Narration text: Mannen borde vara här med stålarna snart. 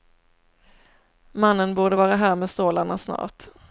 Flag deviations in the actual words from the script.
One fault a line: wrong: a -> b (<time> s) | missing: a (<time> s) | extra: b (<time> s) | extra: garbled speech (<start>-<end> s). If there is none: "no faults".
no faults